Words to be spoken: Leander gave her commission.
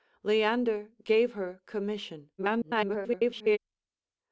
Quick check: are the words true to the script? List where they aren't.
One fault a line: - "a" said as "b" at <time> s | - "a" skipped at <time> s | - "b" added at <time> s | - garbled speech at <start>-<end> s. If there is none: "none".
- garbled speech at 2.4-3.6 s